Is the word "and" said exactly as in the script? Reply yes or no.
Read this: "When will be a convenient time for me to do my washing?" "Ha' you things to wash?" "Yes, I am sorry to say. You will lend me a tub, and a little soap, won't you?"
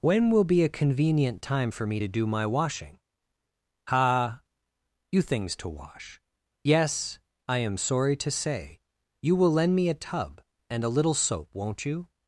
yes